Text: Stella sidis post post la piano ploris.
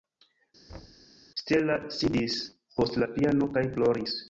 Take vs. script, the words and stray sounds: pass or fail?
fail